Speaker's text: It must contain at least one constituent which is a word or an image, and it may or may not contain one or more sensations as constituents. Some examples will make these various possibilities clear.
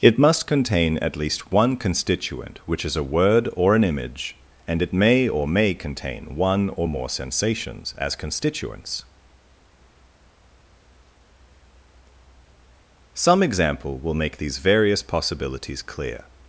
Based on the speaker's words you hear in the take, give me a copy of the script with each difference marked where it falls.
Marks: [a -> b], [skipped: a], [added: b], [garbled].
It must contain at least one constituent which is a word or an image, and it may or may [skipped: not] contain one or more sensations as constituents. Some [examples -> example] will make these various possibilities clear.